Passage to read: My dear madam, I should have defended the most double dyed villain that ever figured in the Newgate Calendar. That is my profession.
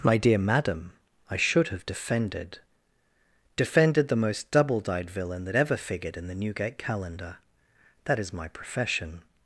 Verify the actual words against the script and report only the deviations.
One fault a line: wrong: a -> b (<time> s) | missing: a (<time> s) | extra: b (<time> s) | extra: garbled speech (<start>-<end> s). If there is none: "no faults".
extra: defended (3.5 s)